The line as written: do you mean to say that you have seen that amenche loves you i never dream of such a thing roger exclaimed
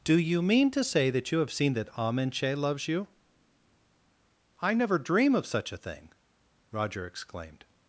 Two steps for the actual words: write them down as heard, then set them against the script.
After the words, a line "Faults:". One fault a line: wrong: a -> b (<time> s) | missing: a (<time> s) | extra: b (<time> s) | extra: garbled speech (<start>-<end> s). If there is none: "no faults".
do you mean to say that you have seen that amenche loves you i never dream of such a thing roger exclaimed
Faults:
no faults